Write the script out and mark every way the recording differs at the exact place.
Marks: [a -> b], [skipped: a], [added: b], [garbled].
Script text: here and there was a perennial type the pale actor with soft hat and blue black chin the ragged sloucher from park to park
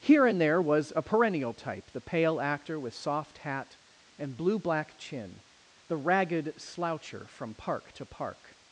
here and there was a perennial type the pale actor with soft hat and blue black chin the ragged sloucher from park to park